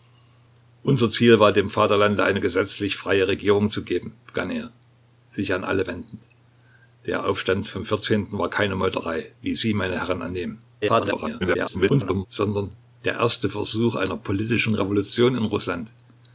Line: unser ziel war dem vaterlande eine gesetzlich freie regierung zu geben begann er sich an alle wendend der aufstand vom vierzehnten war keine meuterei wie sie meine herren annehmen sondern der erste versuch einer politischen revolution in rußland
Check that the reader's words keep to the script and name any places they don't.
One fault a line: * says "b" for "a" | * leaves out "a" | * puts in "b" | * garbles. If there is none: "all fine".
* garbles